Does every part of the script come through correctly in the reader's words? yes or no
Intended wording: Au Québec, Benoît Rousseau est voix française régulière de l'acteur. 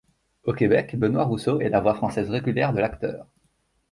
no